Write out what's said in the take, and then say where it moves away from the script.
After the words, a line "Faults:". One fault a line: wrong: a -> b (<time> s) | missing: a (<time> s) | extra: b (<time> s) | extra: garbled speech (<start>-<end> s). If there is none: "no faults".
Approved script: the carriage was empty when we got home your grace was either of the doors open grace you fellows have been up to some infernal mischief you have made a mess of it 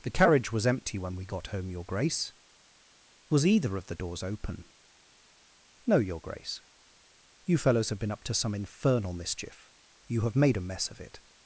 the carriage was empty when we got home your grace was either of the doors open no your grace you fellows have been up to some infernal mischief you have made a mess of it
Faults:
extra: no your (5.8 s)